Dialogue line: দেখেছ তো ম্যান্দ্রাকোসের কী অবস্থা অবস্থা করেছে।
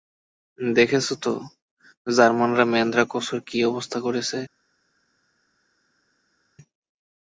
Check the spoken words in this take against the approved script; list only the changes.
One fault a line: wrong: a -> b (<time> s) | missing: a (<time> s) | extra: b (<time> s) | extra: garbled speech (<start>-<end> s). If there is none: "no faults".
extra: জার্মানরা (2.1 s)
missing: অবস্থা (4.0 s)